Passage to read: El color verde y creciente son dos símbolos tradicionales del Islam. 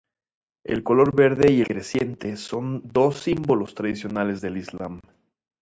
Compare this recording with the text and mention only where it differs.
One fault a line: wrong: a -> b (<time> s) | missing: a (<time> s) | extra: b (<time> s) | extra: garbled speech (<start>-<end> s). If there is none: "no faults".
no faults